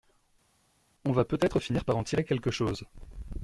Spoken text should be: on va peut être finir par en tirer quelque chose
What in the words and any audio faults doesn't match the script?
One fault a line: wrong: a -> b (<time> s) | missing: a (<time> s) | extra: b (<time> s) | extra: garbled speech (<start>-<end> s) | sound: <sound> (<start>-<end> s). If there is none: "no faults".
no faults